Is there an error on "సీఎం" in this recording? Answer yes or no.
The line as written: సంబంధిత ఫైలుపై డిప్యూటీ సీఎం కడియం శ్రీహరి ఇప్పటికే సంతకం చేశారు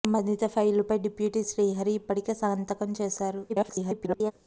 yes